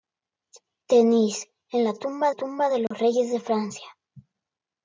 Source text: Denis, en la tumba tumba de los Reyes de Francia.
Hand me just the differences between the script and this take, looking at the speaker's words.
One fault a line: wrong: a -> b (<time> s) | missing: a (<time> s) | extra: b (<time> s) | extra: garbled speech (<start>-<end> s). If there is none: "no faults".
no faults